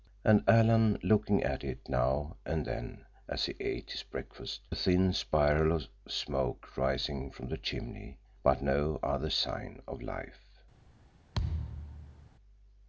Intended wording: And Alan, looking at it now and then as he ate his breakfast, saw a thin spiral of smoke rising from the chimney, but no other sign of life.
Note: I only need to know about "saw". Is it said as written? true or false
false